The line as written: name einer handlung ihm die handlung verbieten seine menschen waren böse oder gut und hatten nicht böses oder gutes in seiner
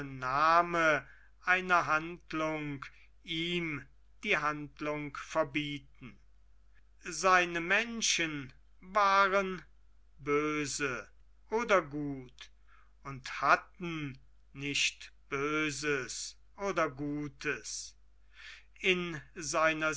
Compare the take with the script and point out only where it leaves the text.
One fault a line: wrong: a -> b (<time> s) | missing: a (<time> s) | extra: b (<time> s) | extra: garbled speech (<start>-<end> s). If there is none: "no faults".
no faults